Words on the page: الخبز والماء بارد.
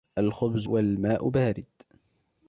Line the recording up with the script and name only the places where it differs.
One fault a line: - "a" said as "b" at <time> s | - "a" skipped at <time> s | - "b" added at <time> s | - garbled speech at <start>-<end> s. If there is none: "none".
none